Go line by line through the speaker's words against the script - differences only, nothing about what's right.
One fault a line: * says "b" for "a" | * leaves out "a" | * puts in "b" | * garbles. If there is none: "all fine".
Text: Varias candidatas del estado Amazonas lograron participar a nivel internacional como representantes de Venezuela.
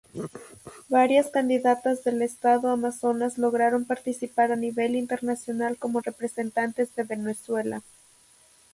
all fine